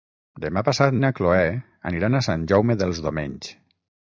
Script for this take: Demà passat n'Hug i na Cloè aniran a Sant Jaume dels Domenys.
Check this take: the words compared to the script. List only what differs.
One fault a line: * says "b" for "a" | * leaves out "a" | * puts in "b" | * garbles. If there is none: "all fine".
* leaves out "n'Hug"